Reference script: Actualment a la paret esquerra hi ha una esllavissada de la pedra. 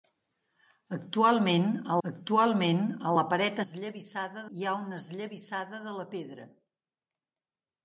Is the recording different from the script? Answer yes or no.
yes